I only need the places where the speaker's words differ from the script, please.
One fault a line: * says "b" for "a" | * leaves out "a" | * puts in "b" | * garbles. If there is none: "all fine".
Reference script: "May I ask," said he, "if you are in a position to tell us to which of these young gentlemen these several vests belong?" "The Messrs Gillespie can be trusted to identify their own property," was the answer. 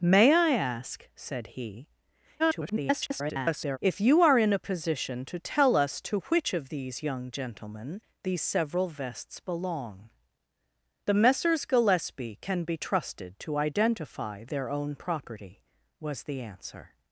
* garbles